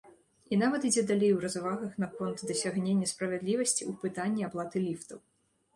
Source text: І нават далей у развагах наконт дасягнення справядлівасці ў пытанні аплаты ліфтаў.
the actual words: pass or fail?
fail